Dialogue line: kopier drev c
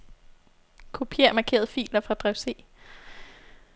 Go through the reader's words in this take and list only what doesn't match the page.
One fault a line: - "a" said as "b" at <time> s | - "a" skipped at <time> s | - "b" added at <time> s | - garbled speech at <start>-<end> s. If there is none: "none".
- "markerede filer fra" added at 1.3 s